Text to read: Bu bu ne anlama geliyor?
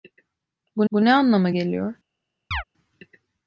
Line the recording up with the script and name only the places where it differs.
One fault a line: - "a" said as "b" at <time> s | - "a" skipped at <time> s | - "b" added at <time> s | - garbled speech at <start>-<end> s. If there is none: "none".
none